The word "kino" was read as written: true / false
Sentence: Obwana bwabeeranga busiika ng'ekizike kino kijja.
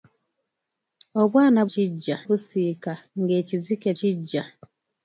false